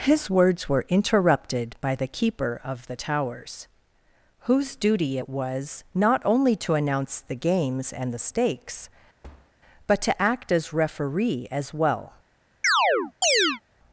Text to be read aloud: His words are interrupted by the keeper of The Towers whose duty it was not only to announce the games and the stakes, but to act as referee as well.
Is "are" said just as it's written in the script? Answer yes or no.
no